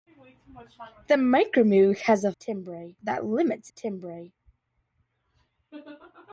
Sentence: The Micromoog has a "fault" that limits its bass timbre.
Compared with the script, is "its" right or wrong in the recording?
wrong